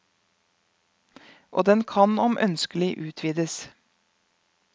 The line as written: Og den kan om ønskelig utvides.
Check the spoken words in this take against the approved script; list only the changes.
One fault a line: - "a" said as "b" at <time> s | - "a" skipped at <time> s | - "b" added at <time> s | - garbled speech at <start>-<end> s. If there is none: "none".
none